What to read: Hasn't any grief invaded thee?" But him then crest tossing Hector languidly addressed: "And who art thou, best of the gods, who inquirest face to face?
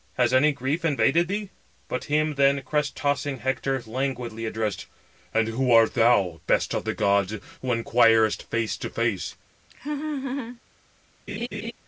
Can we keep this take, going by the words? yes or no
no